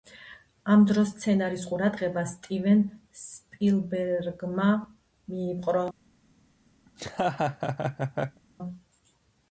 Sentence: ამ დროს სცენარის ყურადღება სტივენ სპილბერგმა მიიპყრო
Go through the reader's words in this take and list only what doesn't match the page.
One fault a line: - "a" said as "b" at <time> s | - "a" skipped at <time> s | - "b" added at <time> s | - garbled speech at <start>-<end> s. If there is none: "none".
none